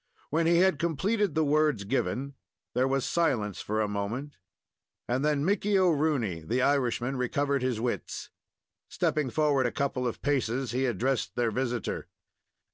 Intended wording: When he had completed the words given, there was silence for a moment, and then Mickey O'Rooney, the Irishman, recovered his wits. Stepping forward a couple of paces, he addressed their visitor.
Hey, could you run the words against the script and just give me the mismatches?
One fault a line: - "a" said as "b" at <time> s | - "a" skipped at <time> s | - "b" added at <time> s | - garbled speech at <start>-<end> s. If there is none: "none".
none